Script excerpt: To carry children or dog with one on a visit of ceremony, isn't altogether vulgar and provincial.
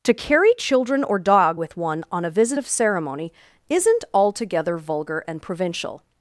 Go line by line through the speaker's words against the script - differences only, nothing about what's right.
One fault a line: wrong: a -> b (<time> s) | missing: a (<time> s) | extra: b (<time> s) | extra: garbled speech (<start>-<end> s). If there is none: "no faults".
no faults